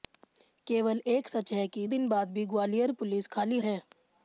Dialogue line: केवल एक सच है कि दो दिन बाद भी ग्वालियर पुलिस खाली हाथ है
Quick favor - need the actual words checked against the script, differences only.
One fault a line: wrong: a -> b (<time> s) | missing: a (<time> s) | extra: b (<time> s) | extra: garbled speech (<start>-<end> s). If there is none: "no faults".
missing: दो (1.9 s)
missing: हाथ (3.6 s)